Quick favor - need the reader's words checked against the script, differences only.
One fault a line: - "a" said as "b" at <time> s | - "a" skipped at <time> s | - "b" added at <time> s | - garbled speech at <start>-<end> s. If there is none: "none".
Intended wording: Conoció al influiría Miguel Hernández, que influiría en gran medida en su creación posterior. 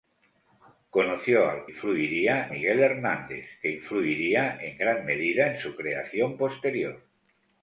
none